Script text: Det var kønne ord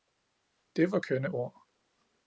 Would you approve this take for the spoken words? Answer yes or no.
yes